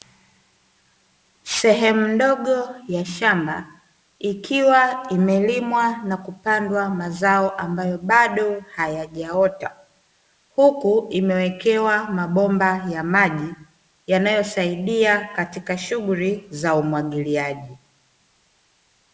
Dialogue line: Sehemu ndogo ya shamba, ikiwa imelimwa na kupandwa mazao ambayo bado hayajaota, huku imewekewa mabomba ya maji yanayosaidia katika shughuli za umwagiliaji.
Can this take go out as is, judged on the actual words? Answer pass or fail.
pass